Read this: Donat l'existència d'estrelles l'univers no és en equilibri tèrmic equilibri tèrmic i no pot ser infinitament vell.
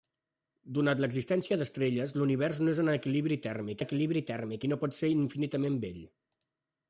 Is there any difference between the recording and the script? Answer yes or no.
no